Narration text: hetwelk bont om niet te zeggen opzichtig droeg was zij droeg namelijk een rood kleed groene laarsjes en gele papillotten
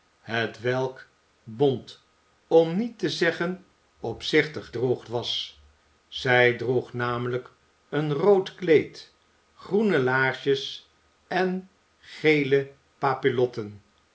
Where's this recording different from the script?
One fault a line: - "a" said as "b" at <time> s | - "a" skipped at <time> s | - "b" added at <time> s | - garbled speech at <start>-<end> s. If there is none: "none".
none